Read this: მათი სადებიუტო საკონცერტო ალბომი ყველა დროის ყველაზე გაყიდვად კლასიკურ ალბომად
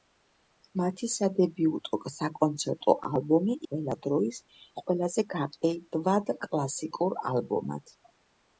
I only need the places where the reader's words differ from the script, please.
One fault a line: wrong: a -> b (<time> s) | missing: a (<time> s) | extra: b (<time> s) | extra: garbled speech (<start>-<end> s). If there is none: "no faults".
no faults